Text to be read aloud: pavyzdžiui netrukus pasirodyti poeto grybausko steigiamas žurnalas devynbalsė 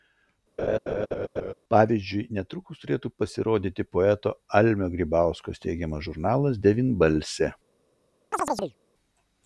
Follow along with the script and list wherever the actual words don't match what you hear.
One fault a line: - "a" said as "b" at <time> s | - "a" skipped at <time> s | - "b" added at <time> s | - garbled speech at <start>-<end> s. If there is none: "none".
- "turėtų" added at 2.8 s
- "almio" added at 4.6 s